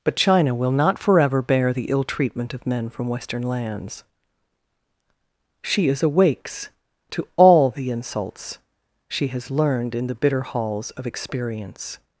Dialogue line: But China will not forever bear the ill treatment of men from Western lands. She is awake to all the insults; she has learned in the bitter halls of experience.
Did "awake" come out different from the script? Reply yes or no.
yes